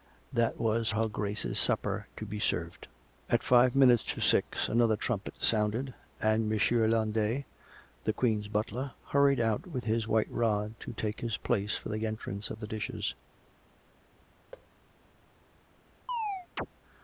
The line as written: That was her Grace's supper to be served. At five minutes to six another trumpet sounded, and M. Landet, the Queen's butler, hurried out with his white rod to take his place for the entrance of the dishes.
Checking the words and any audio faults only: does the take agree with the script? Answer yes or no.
no